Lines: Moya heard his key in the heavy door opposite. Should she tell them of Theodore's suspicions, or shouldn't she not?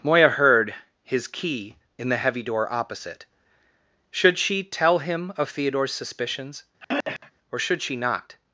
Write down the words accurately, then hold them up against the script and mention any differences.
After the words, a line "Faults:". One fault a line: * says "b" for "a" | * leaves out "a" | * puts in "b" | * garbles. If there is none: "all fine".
Moya heard his key in the heavy door opposite. Should she tell him of Theodore's suspicions, or should she not?
Faults:
* says "him" for "them"
* says "should" for "shouldn't"